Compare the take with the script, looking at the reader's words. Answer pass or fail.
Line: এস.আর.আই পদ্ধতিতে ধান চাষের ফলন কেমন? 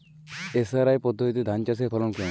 pass